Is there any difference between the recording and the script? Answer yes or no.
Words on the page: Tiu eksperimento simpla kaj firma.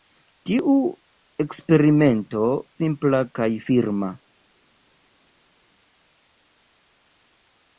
no